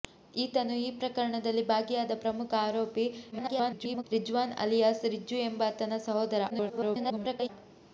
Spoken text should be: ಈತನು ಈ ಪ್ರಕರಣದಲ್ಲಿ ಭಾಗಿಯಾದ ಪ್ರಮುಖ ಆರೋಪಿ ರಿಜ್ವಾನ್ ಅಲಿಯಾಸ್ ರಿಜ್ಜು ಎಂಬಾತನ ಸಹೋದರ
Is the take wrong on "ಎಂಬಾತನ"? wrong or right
right